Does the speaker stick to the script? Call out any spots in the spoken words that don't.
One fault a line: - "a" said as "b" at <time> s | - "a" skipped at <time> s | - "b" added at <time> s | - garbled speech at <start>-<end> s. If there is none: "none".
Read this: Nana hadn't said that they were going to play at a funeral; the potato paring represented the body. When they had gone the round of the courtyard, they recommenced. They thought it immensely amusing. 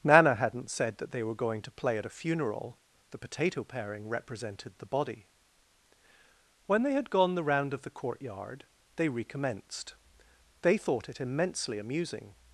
none